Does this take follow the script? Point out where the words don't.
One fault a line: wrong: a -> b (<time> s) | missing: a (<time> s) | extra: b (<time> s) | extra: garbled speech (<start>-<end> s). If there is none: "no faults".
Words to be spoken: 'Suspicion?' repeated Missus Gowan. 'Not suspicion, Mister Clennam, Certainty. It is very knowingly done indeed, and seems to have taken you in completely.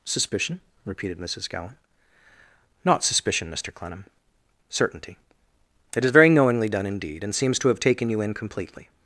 no faults